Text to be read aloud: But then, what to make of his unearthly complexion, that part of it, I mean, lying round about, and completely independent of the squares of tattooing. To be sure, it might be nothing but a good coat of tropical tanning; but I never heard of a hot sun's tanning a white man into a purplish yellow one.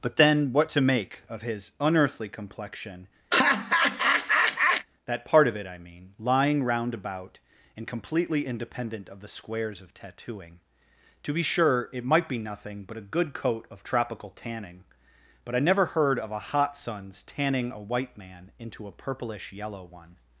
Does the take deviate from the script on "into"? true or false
false